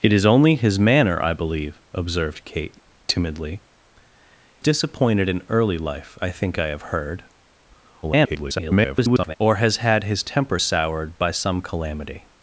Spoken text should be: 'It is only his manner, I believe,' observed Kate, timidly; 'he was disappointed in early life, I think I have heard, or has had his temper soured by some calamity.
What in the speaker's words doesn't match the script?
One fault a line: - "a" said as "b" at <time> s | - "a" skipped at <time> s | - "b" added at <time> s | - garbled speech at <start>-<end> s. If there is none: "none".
- "he was" skipped at 3.6 s
- garbled speech at 8.0-9.4 s